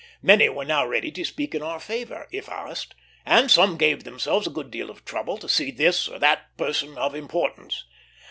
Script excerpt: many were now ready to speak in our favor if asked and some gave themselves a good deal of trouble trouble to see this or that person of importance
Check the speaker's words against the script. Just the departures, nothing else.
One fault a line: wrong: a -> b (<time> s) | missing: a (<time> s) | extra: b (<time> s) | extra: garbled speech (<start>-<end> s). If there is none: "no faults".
missing: trouble (5.4 s)